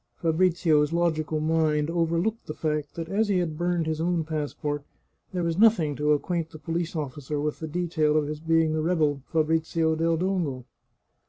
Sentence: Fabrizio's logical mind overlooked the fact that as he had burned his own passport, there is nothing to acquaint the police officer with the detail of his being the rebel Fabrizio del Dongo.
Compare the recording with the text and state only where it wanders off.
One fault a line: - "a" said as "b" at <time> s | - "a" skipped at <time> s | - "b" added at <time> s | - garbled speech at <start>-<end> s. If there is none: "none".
- "is" said as "was" at 5.4 s